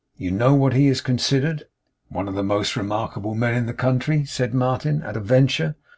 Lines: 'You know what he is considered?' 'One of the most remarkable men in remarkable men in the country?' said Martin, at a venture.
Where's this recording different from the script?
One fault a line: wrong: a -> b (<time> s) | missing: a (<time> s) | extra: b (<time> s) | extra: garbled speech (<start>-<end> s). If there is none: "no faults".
missing: remarkable men in (3.7 s)